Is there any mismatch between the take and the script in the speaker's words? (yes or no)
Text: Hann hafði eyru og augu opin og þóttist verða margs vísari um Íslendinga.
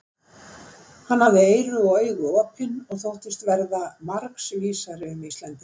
no